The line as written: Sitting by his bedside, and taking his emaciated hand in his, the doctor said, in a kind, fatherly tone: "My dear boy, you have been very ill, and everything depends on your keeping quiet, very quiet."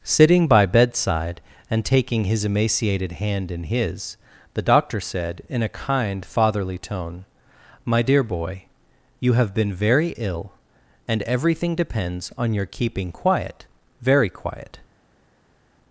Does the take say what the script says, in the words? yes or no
no